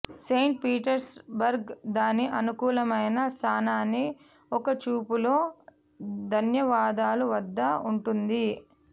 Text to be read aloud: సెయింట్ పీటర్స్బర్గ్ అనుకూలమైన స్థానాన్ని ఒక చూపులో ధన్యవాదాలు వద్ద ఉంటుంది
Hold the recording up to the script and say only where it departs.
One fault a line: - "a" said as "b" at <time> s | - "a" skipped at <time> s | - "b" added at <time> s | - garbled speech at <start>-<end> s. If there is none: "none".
- "దాని" added at 1.9 s